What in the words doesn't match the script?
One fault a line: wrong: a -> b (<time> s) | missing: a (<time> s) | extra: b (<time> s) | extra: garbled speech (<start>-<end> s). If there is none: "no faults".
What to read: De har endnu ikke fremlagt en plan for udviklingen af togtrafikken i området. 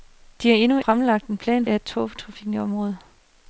missing: ikke (0.8 s)
missing: for udviklingen (1.7 s)